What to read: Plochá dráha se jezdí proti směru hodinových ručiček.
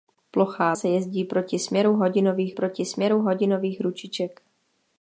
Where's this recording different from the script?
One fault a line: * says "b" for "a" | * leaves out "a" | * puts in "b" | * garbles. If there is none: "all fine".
* leaves out "dráha"
* puts in "proti směru hodinových"